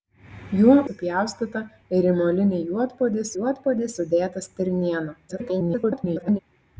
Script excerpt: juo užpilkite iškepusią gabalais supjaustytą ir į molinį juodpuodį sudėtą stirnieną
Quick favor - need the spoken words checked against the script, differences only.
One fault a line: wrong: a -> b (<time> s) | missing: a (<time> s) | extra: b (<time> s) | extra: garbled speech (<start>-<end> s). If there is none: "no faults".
missing: užpilkite iškepusią gabalais (0.8 s)
extra: juodpuodį (3.4 s)
extra: garbled speech (5.3-6.4 s)